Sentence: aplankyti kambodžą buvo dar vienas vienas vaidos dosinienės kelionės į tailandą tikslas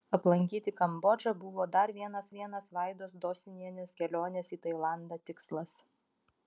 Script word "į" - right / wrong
right